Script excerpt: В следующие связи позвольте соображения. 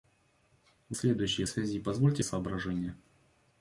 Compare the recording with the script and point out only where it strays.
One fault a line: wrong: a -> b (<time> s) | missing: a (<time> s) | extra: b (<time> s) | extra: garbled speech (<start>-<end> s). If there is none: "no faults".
no faults